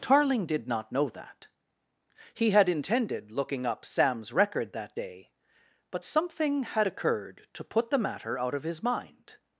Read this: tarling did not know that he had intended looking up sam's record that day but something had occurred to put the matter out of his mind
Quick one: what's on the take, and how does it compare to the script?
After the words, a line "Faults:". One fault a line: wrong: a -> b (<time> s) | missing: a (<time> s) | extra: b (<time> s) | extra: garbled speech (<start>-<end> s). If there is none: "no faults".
tarling did not know that he had intended looking up sam's record that day but something had occurred to put the matter out of his mind
Faults:
no faults